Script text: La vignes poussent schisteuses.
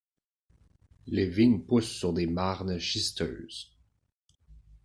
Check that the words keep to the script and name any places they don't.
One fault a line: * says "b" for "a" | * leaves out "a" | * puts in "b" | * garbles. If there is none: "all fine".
* says "Les" for "La"
* puts in "sur des marnes"